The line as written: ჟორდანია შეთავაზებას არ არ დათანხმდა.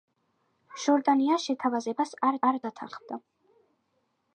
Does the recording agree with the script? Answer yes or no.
yes